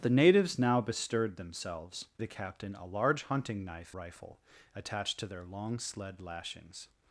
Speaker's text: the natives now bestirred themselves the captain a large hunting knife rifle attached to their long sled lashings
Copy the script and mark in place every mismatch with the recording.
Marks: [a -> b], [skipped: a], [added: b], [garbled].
the natives now bestirred themselves the captain a large hunting knife rifle attached to their long sled lashings